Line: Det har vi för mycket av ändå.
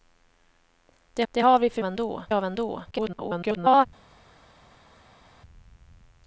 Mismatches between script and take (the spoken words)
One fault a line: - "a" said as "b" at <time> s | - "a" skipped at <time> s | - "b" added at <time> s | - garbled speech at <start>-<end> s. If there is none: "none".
- "det" added at 1.3 s
- "mycket" said as "ändå" at 1.8 s
- garbled speech at 2.9-3.9 s